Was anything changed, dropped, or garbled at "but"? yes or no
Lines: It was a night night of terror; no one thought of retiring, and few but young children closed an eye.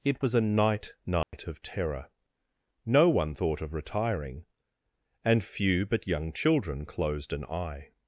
no